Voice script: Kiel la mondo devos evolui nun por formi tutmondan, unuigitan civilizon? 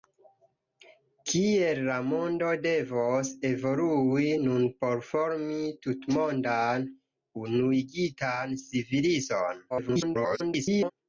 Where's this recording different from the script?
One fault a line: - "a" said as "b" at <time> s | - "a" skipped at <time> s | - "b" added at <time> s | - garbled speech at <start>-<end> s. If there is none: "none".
- garbled speech at 9.7-10.9 s